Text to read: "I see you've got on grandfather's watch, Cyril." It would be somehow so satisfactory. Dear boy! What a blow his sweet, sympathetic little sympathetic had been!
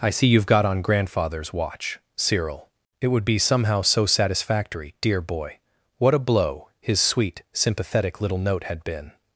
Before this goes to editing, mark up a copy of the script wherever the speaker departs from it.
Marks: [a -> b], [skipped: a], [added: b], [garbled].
"I see you've got on grandfather's watch, Cyril." It would be somehow so satisfactory. Dear boy! What a blow his sweet, sympathetic little [sympathetic -> note] had been!